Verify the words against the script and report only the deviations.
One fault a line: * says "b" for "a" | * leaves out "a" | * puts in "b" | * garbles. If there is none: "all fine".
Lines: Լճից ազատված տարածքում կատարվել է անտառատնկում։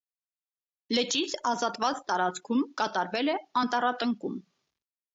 all fine